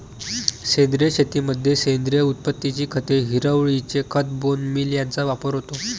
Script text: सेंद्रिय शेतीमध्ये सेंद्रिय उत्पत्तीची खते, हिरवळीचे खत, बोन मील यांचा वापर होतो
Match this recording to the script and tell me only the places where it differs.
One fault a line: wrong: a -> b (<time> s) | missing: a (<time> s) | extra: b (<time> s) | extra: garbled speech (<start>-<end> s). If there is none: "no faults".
no faults